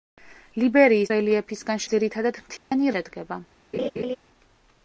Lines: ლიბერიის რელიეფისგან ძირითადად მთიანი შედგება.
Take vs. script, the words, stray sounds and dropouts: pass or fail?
fail